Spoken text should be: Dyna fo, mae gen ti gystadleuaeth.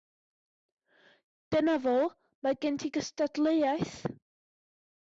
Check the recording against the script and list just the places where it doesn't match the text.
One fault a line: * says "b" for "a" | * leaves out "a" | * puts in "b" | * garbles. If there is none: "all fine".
all fine